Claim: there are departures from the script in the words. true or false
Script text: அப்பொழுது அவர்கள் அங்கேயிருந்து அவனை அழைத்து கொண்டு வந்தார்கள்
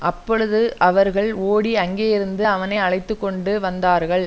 true